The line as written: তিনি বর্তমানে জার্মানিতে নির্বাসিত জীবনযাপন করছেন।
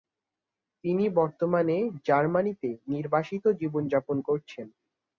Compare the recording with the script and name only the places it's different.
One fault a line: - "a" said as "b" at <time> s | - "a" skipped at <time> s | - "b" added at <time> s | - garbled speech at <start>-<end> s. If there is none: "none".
none